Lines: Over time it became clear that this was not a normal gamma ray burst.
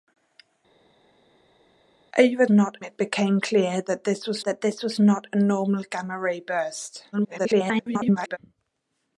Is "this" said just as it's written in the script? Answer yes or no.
yes